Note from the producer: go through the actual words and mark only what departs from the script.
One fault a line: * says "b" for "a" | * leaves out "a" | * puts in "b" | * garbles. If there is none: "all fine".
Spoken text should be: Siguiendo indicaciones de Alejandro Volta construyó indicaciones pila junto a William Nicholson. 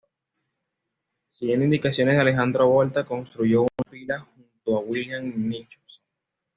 * says "una" for "indicaciones"